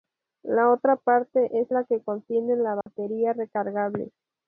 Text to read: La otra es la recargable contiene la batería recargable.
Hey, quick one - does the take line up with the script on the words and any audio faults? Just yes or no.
no